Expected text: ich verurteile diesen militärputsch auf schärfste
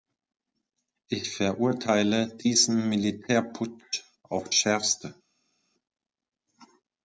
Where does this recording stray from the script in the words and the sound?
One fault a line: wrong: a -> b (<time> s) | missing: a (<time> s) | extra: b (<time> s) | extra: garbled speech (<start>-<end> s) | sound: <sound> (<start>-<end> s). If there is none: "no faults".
no faults